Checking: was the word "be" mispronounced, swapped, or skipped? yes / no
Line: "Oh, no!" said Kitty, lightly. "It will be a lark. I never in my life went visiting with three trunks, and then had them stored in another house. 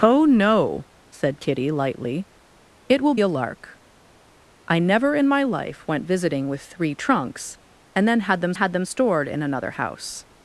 yes